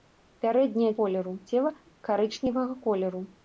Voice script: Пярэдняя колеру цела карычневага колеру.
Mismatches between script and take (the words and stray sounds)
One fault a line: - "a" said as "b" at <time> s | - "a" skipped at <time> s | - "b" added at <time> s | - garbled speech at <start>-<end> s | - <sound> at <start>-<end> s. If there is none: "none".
none